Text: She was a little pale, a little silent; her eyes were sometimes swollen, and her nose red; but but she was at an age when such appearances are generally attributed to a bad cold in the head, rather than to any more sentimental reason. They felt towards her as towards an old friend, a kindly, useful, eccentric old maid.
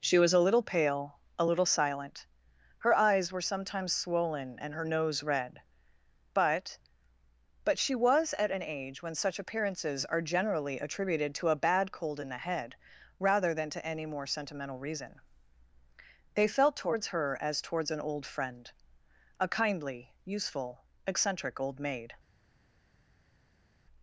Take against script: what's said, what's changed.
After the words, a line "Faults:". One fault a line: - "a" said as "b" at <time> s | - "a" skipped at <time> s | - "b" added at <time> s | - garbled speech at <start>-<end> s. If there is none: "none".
She was a little pale, a little silent; her eyes were sometimes swollen, and her nose red; but but she was at an age when such appearances are generally attributed to a bad cold in the head, rather than to any more sentimental reason. They felt towards her as towards an old friend, a kindly, useful, eccentric old maid.
Faults:
none